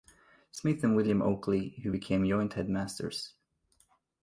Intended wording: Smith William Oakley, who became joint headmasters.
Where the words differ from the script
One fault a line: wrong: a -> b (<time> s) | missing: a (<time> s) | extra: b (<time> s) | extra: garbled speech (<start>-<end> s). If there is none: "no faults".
extra: and (0.8 s)